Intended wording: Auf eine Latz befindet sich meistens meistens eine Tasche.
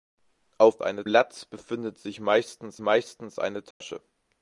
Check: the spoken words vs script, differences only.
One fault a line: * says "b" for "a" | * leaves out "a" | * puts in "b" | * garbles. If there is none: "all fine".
all fine